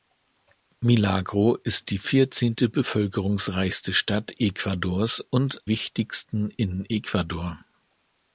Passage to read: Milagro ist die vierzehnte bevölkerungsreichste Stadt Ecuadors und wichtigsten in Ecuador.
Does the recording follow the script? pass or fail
pass